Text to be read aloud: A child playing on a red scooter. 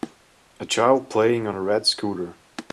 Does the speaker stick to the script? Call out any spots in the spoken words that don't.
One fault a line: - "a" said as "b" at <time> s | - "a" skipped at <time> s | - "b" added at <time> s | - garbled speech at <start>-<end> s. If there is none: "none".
none